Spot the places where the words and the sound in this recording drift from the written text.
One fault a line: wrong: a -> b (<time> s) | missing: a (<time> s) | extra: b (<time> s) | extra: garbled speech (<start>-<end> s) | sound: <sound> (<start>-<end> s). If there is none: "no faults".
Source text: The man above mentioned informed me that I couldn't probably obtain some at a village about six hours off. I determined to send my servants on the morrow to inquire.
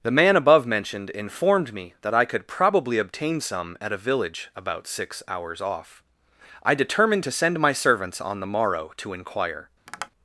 wrong: couldn't -> could (2.2 s)
sound: tap (9.9-10.1 s)